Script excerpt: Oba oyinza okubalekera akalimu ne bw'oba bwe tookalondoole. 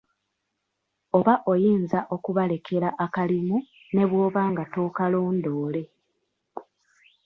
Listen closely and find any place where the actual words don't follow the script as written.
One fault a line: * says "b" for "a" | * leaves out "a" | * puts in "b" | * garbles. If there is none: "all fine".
* says "nga" for "bwe"